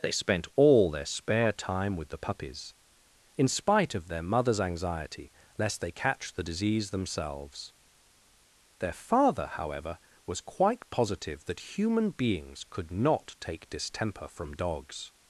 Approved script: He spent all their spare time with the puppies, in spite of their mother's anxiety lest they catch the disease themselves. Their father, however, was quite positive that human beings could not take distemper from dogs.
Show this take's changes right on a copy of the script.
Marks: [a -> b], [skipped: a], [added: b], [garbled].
[He -> They] spent all their spare time with the puppies, in spite of their mother's anxiety lest they catch the disease themselves. Their father, however, was quite positive that human beings could not take distemper from dogs.